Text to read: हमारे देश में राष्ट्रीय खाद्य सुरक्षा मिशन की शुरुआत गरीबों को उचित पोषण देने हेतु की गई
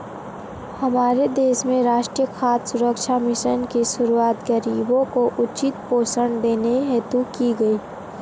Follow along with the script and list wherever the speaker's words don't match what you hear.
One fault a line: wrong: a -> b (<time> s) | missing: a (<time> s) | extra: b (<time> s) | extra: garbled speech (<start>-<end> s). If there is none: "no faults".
no faults